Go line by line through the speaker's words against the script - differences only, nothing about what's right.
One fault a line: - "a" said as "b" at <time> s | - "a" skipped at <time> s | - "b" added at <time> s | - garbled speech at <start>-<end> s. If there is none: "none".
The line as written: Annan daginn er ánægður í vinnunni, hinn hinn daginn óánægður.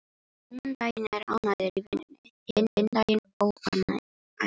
none